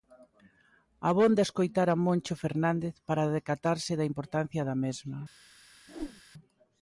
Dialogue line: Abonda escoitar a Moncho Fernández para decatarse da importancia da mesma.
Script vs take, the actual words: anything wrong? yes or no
no